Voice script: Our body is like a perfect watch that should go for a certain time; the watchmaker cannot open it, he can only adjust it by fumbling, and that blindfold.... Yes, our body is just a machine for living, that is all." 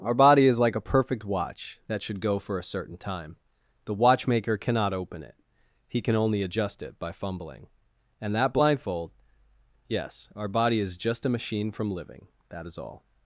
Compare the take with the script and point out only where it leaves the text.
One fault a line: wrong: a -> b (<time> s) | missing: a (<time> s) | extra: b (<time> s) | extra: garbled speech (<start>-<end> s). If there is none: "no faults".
wrong: for -> from (11.7 s)